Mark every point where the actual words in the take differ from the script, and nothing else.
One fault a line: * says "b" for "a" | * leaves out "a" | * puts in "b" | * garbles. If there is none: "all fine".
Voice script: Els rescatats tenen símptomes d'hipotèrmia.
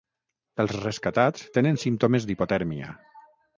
all fine